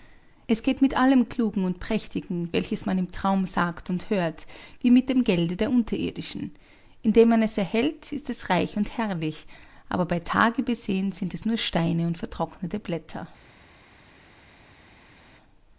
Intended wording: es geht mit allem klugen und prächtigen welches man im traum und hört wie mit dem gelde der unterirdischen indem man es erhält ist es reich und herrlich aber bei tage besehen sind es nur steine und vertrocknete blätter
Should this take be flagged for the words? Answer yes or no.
yes